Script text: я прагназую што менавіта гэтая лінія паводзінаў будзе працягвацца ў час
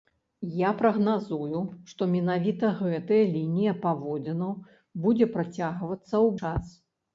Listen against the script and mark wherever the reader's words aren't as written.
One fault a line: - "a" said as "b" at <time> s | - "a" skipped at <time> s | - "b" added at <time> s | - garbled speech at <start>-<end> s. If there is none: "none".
none